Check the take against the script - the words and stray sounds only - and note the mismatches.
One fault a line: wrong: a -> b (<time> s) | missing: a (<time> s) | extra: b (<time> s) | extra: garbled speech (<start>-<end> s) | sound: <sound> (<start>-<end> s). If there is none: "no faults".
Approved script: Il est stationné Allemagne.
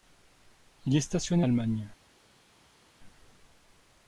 no faults